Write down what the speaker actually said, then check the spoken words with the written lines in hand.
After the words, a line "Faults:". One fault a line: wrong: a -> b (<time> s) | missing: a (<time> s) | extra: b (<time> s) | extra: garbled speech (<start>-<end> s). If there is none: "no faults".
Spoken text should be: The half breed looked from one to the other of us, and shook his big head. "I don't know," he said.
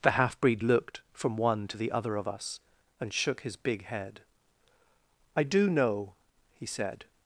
The half breed looked from one to the other of us, and shook his big head. "I do know," he said.
Faults:
wrong: don't -> do (5.4 s)